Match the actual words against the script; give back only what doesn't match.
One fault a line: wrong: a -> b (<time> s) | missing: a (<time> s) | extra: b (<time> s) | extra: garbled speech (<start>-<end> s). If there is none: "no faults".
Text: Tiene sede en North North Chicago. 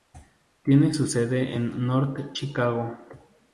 extra: su (0.9 s)
missing: North (2.4 s)